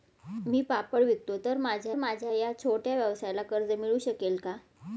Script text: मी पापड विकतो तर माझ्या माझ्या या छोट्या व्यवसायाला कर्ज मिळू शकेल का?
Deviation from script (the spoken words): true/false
false